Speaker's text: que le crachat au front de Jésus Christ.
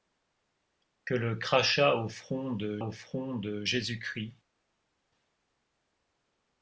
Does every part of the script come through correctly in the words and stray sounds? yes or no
no